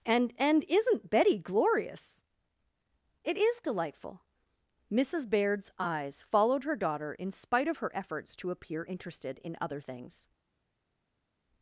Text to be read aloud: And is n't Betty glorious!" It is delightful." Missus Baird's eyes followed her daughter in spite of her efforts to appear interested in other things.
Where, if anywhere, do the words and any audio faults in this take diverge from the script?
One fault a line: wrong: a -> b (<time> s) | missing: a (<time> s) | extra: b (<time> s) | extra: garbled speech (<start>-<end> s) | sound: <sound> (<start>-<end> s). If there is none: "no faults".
extra: and (0.4 s)